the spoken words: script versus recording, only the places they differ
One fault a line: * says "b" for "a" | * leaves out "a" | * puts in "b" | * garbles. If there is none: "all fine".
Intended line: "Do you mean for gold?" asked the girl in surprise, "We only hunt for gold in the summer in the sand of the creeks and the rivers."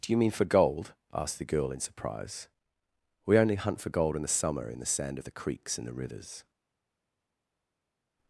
all fine